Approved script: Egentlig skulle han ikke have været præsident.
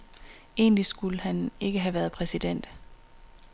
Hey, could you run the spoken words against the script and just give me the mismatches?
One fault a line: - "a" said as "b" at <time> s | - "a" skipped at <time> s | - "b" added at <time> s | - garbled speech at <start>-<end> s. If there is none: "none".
none